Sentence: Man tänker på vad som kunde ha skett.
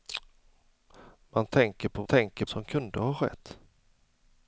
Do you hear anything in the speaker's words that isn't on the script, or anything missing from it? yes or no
yes